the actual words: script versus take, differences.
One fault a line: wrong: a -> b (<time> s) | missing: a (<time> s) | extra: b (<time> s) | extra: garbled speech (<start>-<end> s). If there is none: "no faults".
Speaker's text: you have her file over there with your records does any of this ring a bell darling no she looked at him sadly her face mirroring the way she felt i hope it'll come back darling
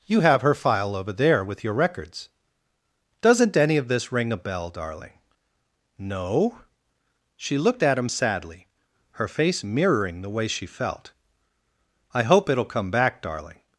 wrong: does -> doesn't (3.2 s)